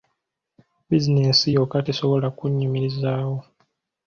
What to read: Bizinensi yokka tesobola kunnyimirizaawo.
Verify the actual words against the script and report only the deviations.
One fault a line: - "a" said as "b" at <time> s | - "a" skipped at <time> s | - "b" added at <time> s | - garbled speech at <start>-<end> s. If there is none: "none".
none